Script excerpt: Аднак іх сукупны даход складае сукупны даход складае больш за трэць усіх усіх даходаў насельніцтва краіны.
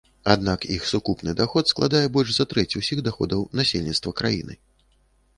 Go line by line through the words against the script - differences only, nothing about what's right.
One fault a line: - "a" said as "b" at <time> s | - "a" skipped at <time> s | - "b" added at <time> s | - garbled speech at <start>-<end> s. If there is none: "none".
- "сукупны даход складае" skipped at 2.0 s
- "усіх" skipped at 3.0 s